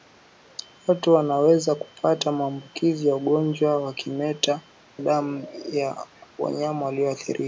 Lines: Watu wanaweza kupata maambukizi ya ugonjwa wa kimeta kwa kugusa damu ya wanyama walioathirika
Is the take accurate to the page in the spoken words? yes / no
no